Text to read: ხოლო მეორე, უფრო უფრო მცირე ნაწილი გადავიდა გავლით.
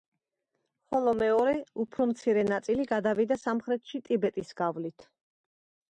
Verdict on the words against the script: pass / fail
fail